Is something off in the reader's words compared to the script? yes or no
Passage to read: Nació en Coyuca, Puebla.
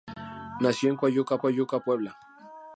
yes